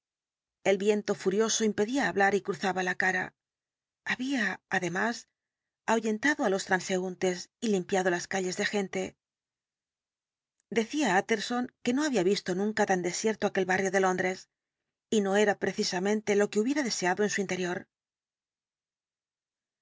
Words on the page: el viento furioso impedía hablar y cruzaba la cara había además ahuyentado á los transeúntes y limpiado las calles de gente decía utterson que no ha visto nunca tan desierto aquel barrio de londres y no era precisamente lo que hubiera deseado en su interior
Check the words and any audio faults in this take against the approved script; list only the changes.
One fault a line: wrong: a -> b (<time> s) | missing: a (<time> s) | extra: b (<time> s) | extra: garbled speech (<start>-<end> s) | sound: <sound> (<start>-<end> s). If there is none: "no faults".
wrong: ha -> había (12.0 s)